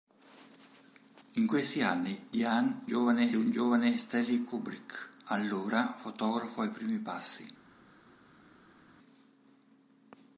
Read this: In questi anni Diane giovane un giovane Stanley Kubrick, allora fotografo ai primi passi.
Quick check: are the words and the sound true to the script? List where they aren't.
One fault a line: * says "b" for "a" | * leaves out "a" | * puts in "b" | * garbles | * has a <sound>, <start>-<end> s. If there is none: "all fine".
all fine